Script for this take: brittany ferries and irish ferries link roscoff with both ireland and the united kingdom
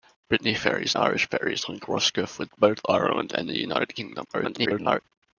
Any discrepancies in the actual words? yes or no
yes